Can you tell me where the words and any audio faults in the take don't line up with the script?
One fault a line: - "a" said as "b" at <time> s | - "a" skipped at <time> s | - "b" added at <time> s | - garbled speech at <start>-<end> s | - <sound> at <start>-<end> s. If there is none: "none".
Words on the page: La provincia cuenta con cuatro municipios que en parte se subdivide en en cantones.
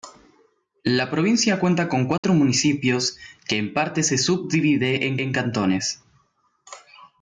- dropout at 2.2-2.2 s